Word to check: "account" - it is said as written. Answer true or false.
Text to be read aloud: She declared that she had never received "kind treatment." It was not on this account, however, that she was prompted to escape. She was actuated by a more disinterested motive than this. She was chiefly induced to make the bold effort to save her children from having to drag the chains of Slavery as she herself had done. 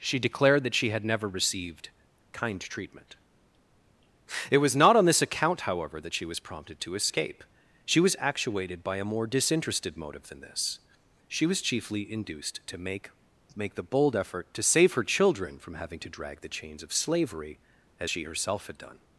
true